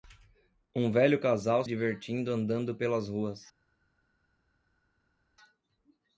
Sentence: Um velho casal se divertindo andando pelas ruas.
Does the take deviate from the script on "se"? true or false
true